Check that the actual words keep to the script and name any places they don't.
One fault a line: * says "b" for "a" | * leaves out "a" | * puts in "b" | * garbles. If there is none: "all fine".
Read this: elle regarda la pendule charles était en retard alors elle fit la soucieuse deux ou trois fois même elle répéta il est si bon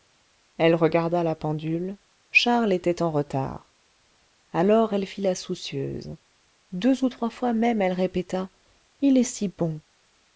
all fine